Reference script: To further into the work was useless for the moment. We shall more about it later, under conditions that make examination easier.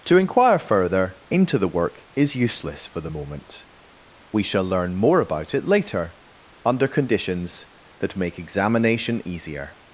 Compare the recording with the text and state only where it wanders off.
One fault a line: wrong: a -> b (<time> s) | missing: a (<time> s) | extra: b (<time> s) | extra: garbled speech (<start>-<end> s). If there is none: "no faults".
extra: inquire (0.2 s)
wrong: was -> is (2.1 s)
extra: learn (4.6 s)